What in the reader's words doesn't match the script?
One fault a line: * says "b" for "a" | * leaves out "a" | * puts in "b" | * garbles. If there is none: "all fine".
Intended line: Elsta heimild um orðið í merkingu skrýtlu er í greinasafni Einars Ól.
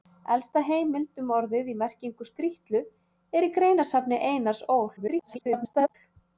* garbles